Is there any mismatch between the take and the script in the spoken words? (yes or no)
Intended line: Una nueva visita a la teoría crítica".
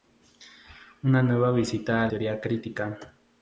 yes